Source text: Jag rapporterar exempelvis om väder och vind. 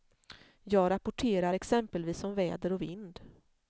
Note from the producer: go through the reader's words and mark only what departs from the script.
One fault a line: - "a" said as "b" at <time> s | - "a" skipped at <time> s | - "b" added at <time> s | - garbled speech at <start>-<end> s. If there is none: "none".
none